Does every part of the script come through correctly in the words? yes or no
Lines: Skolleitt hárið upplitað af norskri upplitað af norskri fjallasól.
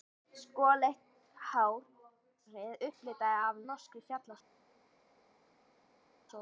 no